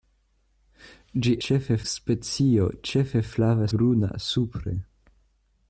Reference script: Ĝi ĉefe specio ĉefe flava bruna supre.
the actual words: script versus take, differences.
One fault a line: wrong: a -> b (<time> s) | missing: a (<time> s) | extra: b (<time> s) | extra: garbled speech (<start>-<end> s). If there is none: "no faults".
no faults